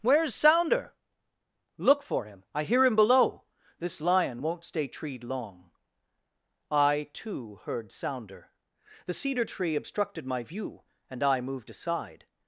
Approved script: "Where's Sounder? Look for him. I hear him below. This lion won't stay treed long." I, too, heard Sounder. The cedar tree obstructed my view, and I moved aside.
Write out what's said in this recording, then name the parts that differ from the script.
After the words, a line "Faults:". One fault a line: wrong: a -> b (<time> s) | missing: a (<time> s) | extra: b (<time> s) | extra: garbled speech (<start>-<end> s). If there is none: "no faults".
"Where's Sounder? Look for him. I hear him below. This lion won't stay treed long." I, too, heard Sounder. The cedar tree obstructed my view, and I moved aside.
Faults:
no faults